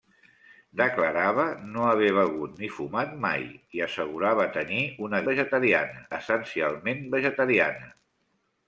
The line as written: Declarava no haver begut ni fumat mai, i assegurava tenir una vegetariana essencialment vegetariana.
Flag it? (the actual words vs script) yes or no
no